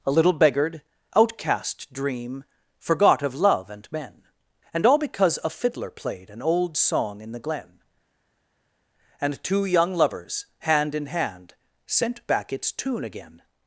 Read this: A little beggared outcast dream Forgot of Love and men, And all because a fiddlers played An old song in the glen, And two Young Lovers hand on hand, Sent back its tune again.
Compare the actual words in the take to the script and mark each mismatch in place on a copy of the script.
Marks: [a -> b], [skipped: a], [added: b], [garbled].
A little beggared outcast dream Forgot of Love and men, And all because a [fiddlers -> fiddler] played An old song in the glen, And two Young Lovers hand [on -> in] hand, Sent back its tune again.